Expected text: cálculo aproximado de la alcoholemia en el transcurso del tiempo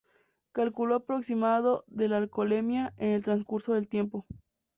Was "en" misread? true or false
false